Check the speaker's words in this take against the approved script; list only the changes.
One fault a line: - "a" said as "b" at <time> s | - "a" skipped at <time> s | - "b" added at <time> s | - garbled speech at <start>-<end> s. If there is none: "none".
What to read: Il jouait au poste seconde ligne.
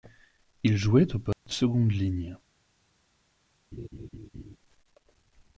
none